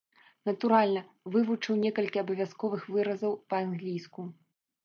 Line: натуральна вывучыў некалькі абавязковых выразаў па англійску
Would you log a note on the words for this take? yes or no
no